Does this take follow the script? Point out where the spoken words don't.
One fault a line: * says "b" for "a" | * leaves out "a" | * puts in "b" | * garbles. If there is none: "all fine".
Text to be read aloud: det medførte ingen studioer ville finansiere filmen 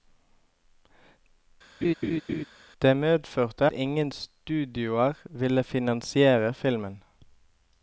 all fine